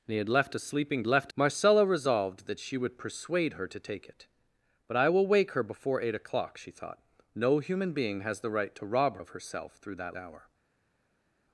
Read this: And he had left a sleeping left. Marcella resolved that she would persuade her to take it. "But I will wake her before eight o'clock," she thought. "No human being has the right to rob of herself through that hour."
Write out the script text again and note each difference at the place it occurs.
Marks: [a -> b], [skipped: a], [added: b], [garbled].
And he had left a sleeping left. Marcella resolved that she would persuade her to take it. "But I will wake her before eight o'clock," she thought. "No human being has the right to rob of herself through that hour."